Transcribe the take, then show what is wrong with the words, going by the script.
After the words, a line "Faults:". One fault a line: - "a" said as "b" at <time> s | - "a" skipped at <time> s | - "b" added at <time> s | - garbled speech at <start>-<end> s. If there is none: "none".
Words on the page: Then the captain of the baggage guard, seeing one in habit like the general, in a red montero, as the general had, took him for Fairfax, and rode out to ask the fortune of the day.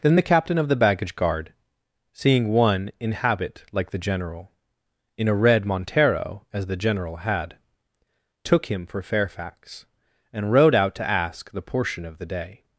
Then the captain of the baggage guard, seeing one in habit like the general, in a red montero, as the general had, took him for Fairfax, and rode out to ask the portion of the day.
Faults:
- "fortune" said as "portion" at 11.6 s